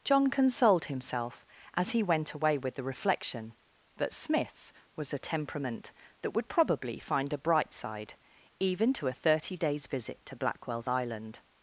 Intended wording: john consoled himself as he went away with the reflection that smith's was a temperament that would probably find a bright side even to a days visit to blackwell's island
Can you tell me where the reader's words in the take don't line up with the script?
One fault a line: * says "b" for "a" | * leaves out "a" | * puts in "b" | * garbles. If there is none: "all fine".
* puts in "thirty"